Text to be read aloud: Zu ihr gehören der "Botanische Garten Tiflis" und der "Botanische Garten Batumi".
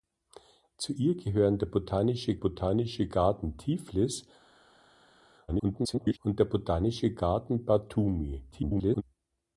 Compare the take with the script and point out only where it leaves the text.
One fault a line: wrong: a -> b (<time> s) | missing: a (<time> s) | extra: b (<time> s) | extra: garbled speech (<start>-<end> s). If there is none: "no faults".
extra: botanische (2.4 s)
extra: garbled speech (5.5-6.2 s)
extra: garbled speech (8.5-9.0 s)